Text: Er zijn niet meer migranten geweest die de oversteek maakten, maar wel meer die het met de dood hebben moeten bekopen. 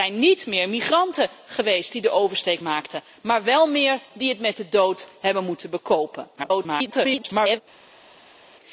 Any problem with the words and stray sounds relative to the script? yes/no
yes